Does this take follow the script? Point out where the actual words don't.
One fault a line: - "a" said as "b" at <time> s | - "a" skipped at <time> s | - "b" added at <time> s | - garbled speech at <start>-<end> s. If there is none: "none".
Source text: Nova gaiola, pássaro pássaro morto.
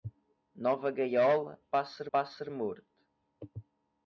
none